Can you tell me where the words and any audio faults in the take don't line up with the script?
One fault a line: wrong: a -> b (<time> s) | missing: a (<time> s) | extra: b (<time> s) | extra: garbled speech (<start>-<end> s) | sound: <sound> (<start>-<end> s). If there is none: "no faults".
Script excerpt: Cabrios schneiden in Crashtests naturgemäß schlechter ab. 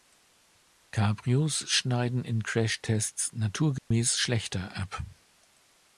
sound: dropout (3.8-3.9 s)